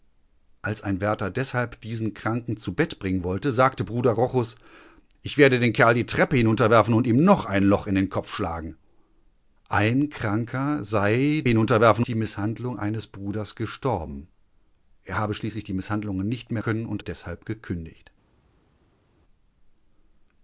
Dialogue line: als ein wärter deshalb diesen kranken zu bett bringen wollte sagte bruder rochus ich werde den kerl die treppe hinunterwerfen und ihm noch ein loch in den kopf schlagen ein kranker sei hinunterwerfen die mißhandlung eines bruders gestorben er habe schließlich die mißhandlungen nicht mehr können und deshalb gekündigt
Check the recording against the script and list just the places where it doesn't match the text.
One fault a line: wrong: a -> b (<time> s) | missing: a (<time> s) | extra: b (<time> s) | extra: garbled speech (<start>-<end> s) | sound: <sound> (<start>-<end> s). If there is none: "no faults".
no faults